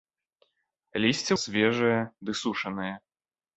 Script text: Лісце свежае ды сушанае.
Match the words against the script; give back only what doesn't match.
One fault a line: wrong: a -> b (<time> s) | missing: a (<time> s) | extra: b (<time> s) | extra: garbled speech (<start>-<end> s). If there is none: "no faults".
no faults